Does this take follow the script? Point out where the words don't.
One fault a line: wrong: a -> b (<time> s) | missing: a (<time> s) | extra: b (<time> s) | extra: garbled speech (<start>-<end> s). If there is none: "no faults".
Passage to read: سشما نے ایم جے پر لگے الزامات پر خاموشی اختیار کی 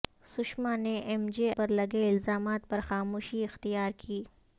no faults